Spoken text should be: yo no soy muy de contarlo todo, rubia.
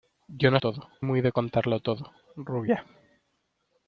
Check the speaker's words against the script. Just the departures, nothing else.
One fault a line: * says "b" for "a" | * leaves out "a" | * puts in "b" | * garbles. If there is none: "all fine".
* says "todo" for "soy"